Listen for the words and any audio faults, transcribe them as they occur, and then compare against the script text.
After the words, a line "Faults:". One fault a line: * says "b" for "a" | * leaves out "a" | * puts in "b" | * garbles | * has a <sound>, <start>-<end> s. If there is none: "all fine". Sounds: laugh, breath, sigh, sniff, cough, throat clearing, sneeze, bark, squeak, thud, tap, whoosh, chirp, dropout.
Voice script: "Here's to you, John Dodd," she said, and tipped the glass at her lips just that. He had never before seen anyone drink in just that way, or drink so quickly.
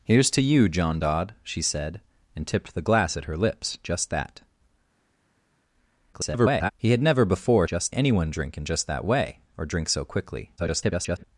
"Here's to you, John Dodd," she said, and tipped the glass at her lips just that. [garbled] He had never before just anyone drink in just that way, or drink so quickly. [garbled]
Faults:
* garbles
* says "just" for "seen"
* garbles